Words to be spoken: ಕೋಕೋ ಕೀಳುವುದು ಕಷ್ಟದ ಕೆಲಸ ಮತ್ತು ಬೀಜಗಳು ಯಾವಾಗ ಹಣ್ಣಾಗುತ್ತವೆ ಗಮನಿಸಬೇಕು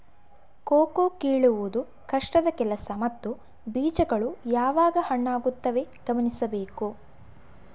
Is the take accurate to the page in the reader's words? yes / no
yes